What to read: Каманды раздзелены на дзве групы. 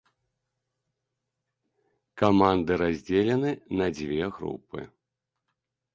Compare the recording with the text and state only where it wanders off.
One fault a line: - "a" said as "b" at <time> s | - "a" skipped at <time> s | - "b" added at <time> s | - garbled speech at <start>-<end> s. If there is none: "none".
none